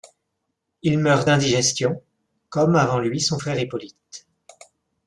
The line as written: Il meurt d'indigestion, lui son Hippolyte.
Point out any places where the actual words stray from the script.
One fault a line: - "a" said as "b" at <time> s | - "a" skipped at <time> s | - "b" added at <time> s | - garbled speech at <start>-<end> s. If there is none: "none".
- "comme avant" added at 2.5 s
- "frère" added at 3.4 s